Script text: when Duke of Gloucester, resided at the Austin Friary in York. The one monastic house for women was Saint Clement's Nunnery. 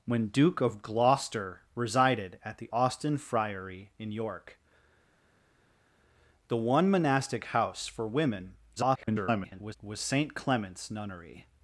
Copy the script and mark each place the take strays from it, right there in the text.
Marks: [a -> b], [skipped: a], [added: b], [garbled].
when Duke of Gloucester, resided at the Austin Friary in York. The one monastic house for women [garbled] was Saint Clement's Nunnery.